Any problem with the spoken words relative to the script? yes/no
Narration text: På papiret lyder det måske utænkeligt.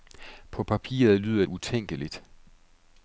yes